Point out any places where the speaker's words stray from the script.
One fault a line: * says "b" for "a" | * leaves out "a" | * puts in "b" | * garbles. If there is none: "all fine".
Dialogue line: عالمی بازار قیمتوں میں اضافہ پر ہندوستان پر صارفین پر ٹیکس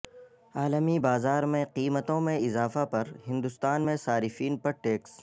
* puts in "میں"
* says "میں" for "پر"